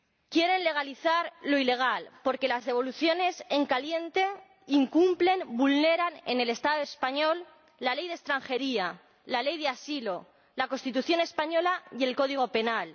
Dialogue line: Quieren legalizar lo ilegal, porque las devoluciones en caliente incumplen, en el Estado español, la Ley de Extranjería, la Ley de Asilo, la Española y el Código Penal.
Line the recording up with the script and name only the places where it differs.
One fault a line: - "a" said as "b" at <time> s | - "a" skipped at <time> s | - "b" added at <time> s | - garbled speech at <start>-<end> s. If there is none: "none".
- "vulneran" added at 5.6 s
- "Constitución" added at 10.7 s